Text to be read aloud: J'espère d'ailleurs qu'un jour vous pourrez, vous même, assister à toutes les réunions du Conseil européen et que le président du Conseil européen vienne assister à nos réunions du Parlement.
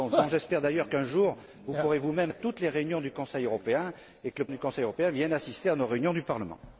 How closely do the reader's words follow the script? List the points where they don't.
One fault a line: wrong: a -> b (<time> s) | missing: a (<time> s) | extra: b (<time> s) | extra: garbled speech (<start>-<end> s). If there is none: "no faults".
missing: assister (2.3 s)
missing: président (4.5 s)